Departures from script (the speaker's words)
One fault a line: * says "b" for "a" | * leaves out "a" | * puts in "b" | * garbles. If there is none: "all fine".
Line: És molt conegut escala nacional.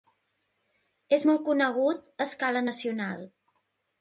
* puts in "a"